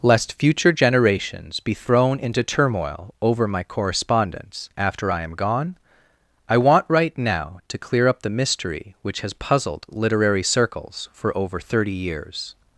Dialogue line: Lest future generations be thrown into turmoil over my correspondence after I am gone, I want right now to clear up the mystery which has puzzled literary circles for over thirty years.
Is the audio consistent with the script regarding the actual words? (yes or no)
yes